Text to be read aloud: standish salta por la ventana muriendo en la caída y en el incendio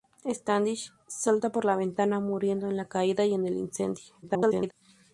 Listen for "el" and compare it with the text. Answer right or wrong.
right